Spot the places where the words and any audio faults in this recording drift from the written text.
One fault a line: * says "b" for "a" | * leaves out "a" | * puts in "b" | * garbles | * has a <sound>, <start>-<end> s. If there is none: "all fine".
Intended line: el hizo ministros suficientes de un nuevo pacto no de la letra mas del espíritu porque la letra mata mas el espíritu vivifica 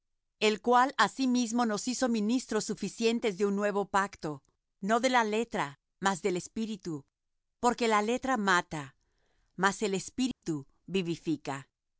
* puts in "cual asimismo nos"
* has a dropout, 10.3-10.4 s